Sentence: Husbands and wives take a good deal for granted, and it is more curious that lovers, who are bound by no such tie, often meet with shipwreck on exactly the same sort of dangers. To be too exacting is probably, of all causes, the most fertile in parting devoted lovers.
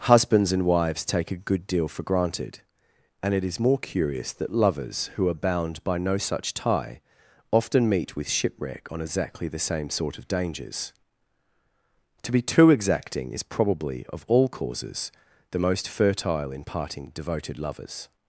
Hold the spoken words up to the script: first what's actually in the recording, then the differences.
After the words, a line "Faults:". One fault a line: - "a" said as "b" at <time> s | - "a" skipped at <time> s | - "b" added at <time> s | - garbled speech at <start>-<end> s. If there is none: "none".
Husbands and wives take a good deal for granted, and it is more curious that lovers, who are bound by no such tie, often meet with shipwreck on exactly the same sort of dangers. To be too exacting is probably, of all causes, the most fertile in parting devoted lovers.
Faults:
none